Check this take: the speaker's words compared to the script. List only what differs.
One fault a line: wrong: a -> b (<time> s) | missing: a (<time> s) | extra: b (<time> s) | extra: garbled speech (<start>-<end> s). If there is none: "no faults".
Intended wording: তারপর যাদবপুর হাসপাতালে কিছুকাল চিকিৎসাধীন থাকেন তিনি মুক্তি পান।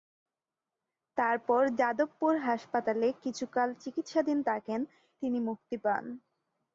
no faults